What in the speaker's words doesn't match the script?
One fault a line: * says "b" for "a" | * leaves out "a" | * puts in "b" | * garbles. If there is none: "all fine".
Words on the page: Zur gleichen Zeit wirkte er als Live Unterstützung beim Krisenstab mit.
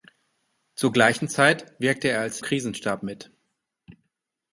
* leaves out "Live Unterstützung beim"